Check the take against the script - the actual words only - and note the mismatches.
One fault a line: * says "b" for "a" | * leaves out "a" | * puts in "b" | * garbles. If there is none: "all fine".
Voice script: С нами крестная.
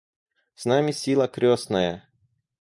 * puts in "сила"